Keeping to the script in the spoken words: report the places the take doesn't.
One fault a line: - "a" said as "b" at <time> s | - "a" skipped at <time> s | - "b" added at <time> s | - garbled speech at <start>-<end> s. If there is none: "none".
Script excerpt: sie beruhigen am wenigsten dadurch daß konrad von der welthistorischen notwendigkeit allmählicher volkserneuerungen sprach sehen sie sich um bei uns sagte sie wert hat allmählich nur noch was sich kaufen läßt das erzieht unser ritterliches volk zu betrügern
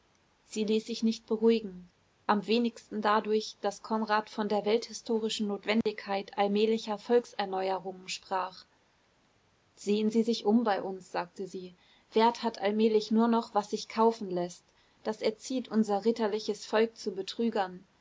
- "ließ sich nicht" added at 0.6 s